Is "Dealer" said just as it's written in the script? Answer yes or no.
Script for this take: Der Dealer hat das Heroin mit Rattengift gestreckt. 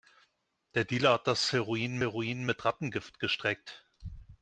yes